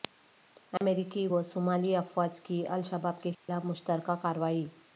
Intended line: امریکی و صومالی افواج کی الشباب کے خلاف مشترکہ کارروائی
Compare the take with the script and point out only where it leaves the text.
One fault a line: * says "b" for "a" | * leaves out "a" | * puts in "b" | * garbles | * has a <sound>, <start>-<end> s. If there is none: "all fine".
* has a dropout, 0.8-0.8 s
* has a dropout, 3.3-3.5 s